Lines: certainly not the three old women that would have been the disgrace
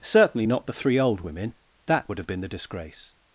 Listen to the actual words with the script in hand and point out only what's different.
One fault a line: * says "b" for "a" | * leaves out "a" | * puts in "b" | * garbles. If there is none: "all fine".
all fine